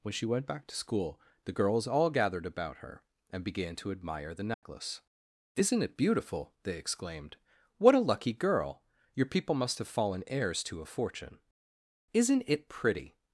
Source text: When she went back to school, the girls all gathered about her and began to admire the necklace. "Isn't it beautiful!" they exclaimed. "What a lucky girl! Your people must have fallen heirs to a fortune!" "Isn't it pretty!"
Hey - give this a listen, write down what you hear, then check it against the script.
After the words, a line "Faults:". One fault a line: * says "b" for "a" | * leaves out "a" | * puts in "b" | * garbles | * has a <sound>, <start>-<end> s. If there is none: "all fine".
When she went back to school, the girls all gathered about her and began to admire the necklace. "Isn't it beautiful!" they exclaimed. "What a lucky girl! Your people must have fallen heirs to a fortune!" "Isn't it pretty!"
Faults:
* has a dropout, 4.5-4.6 s